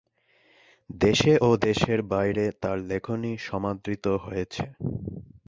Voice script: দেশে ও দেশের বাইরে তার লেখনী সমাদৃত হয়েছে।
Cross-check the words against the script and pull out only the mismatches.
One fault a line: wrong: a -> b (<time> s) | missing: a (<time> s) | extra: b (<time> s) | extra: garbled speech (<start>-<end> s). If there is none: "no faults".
no faults